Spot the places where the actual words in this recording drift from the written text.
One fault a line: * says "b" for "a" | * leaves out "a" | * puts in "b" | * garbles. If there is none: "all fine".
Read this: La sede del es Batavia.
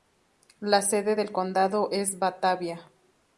* puts in "condado"